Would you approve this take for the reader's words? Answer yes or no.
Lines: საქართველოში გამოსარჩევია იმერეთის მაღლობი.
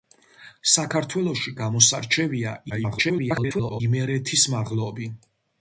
no